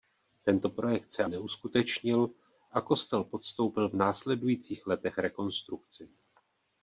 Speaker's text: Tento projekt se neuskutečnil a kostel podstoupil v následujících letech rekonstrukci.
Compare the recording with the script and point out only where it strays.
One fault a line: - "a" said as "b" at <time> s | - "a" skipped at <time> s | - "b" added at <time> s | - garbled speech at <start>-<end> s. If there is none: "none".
none